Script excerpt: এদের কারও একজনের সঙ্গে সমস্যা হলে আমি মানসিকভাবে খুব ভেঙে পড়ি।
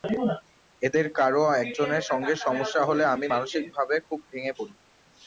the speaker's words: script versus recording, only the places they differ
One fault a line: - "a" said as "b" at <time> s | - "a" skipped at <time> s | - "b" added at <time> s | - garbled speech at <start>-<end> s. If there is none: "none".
none